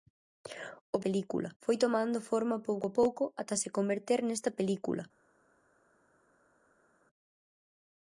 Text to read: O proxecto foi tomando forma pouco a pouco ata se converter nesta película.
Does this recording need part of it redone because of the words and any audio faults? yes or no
yes